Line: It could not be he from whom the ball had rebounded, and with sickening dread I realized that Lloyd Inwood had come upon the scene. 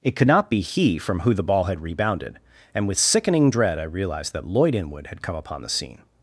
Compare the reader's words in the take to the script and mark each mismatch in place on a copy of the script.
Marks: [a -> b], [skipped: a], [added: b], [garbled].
It could not be he from [whom -> who] the ball had rebounded, and with sickening dread I realized that Lloyd Inwood had come upon the scene.